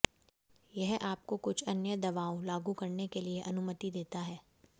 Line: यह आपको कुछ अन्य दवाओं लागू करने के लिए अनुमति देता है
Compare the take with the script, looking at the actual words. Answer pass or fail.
pass